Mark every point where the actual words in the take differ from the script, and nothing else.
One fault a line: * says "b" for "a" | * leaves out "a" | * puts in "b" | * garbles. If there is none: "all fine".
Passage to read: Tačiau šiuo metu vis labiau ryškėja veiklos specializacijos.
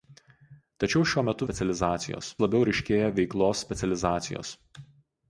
* says "specializacijos" for "vis"